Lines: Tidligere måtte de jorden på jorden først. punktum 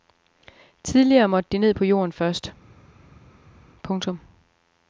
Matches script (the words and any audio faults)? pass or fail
fail